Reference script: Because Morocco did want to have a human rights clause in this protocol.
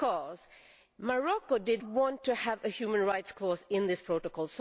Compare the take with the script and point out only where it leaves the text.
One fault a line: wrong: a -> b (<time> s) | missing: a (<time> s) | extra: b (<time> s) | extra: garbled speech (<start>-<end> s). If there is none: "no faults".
no faults